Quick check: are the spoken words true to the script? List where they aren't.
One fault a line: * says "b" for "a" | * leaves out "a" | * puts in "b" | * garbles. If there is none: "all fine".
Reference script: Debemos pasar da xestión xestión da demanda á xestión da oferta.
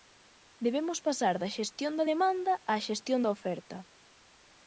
* leaves out "xestión"